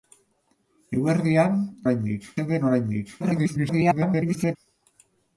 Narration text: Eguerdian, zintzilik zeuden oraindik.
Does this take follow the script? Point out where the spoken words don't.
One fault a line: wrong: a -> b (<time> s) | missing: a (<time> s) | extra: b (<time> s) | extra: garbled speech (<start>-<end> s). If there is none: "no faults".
wrong: zintzilik -> oraindik (1.9 s)
extra: garbled speech (3.2-4.6 s)